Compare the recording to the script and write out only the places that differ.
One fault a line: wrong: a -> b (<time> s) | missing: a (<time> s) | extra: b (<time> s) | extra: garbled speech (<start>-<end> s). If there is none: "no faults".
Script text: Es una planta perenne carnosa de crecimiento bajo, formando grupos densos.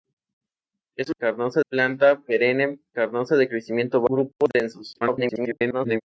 wrong: una -> carnosa (1.2 s)
missing: bajo formando (4.0 s)
extra: garbled speech (5.0-6.0 s)